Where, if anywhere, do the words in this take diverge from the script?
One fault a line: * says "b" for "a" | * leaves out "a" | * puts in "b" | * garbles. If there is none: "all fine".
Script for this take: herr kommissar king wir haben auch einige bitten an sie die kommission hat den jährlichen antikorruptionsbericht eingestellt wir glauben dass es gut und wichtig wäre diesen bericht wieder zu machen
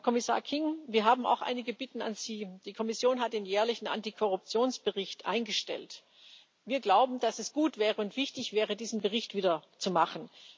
all fine